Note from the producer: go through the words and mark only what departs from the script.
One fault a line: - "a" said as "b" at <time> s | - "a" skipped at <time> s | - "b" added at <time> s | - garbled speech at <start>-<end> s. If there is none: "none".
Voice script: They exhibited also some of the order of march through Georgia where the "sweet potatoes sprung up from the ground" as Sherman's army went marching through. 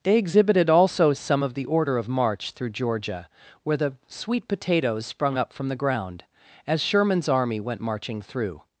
none